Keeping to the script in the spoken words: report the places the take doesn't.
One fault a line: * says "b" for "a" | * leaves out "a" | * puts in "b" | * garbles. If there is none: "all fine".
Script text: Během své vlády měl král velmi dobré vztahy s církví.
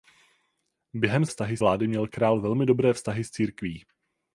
* says "vztahy" for "své"